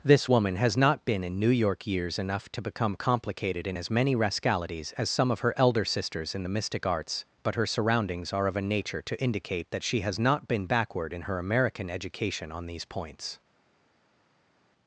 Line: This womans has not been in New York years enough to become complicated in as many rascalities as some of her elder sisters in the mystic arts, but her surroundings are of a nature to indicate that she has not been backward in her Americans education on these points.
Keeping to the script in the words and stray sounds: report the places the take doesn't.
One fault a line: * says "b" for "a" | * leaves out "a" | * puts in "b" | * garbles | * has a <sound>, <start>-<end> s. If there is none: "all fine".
* says "woman" for "womans"
* says "American" for "Americans"